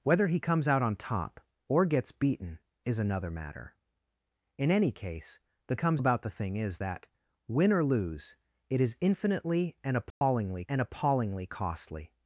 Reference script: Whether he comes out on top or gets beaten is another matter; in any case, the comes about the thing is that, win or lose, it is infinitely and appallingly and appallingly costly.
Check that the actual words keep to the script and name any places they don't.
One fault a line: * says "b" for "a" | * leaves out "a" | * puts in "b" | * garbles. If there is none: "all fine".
all fine